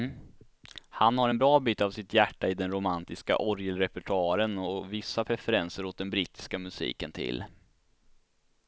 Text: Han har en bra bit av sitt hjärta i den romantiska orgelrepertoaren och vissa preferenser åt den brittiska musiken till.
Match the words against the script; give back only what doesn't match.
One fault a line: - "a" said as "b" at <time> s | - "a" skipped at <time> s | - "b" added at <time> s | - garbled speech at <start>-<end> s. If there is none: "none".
none